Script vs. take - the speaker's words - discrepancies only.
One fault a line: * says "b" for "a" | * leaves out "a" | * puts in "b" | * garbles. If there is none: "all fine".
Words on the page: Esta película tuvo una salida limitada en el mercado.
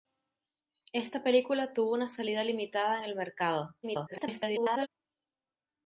* garbles